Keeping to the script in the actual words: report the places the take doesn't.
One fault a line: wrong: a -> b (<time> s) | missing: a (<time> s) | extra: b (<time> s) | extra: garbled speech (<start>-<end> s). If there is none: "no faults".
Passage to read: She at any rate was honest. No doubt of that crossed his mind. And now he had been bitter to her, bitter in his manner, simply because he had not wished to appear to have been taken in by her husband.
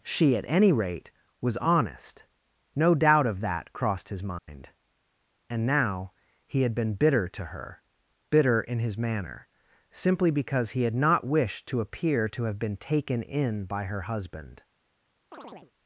no faults